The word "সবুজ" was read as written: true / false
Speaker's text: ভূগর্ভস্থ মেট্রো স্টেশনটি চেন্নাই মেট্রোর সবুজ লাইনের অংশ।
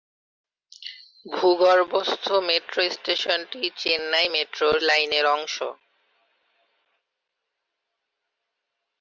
false